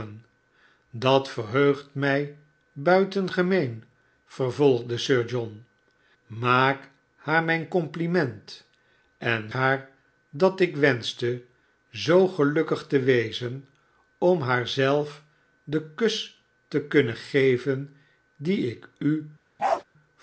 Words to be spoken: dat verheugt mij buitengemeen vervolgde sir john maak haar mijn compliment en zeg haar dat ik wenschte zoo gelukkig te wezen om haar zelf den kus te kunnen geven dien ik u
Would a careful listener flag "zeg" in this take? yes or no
yes